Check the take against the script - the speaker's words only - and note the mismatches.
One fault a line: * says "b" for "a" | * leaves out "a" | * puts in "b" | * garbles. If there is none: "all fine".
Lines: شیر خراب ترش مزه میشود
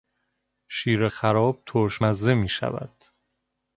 all fine